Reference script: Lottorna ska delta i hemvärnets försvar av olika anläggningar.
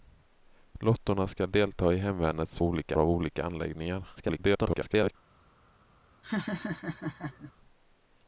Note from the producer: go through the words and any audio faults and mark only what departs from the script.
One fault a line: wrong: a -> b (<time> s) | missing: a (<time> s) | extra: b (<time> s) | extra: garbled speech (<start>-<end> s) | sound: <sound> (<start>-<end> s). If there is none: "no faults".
wrong: försvar -> olika (2.6 s)
extra: garbled speech (4.2-5.2 s)
sound: laugh (6.2-7.5 s)